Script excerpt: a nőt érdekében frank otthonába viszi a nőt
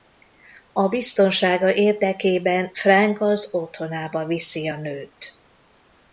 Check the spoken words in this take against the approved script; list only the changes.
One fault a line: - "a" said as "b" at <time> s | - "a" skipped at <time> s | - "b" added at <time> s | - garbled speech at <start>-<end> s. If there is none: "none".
- "nőt" said as "biztonsága" at 0.9 s
- "az" added at 3.2 s